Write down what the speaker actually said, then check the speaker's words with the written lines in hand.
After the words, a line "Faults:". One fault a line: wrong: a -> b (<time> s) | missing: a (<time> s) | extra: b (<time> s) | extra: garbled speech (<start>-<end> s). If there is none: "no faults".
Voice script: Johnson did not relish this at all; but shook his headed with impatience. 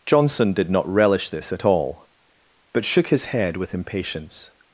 Johnson did not relish this at all; but shook his head with impatience.
Faults:
wrong: headed -> head (3.3 s)